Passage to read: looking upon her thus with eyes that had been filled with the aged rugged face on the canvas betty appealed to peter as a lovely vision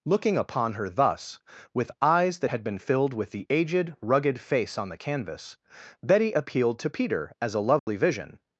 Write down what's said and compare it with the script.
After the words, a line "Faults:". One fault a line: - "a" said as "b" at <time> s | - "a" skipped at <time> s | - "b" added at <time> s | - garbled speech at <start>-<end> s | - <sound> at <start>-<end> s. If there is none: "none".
looking upon her thus with eyes that had been filled with the aged rugged face on the canvas betty appealed to peter as a lovely vision
Faults:
- dropout at 7.8-7.9 s